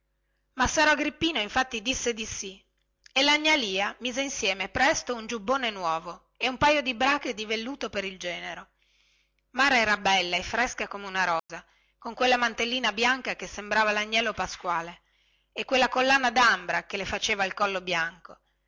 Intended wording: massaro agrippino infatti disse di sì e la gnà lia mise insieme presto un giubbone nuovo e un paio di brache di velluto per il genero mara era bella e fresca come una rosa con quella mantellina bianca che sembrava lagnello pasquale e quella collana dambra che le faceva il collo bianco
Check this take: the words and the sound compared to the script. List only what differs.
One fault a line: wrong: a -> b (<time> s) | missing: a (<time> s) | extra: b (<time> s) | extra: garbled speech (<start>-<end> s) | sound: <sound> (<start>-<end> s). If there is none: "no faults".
sound: dropout (11.4-11.5 s)